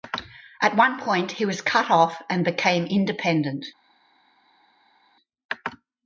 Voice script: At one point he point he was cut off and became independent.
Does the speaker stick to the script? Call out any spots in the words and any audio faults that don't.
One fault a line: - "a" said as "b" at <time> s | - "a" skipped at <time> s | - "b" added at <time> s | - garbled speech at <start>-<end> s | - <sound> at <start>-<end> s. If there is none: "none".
- "point he" skipped at 1.4 s